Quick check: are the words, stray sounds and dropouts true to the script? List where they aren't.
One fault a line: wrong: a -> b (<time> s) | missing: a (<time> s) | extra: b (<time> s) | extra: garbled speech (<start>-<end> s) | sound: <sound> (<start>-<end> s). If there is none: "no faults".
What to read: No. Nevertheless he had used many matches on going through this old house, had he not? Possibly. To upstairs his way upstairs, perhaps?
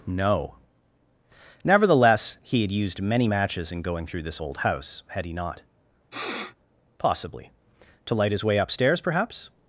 wrong: on -> in (3.7 s)
sound: sniff (6.1-6.6 s)
wrong: upstairs -> light (8.1 s)